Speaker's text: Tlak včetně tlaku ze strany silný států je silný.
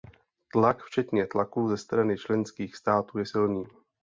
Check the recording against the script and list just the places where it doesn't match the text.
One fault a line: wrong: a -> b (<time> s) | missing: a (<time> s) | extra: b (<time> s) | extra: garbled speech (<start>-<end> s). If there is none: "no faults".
wrong: silný -> členských (2.2 s)